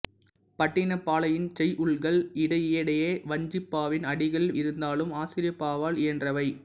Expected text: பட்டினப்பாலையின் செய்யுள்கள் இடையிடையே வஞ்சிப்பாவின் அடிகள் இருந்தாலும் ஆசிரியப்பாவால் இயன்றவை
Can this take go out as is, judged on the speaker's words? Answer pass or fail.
pass